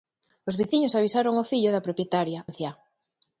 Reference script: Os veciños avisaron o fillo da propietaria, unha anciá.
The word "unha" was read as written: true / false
false